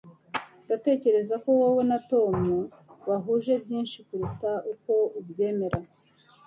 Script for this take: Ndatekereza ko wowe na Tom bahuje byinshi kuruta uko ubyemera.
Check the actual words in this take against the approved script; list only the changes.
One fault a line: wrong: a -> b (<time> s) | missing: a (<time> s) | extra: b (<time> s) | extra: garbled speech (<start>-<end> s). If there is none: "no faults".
no faults